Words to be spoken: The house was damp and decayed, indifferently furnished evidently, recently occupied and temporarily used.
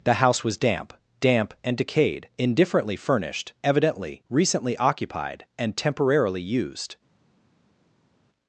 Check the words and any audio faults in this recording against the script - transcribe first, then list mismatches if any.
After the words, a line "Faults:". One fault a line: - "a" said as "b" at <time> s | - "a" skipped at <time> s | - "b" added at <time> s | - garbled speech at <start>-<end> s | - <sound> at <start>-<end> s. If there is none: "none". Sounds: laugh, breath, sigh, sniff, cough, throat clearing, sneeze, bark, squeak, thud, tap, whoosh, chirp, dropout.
The house was damp damp and decayed, indifferently furnished evidently, recently occupied and temporarily used.
Faults:
- "damp" added at 1.2 s